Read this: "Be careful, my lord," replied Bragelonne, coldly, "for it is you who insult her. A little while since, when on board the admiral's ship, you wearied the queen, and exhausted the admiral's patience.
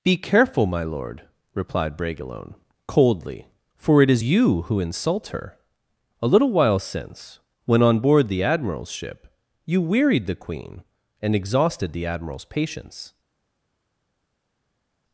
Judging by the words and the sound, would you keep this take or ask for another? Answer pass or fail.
pass